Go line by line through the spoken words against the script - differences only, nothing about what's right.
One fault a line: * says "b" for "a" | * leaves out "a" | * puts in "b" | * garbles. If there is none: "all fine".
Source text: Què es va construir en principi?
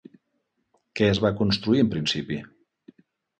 all fine